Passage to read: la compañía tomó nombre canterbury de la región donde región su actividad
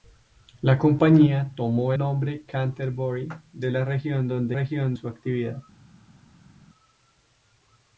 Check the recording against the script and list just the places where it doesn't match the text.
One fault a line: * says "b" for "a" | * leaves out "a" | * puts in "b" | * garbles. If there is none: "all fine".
all fine